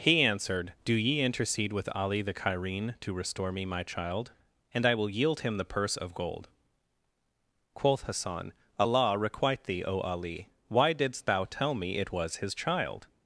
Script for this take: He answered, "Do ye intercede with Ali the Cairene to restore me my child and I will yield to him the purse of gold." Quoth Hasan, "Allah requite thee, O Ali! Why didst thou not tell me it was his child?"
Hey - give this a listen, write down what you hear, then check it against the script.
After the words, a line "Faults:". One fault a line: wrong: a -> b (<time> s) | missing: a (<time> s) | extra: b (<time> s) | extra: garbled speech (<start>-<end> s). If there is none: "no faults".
He answered, "Do ye intercede with Ali the Cairene to restore me my child and I will yield him the purse of gold." Quoth Hasan, "Allah requite thee, O Ali! Why didst thou tell me it was his child?"
Faults:
missing: to (5.4 s)
missing: not (11.4 s)